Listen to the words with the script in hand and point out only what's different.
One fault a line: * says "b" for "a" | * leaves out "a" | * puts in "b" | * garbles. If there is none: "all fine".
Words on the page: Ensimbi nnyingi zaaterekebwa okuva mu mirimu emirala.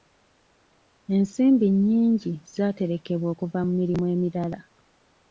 all fine